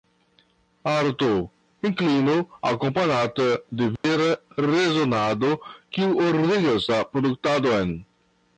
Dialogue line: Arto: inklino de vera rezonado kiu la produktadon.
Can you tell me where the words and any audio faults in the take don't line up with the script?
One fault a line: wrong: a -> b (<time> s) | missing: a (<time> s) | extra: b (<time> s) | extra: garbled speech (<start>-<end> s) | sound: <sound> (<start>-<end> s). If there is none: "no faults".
extra: akompanata (2.6 s)
sound: dropout (4.0-4.0 s)
extra: ordigas (6.3 s)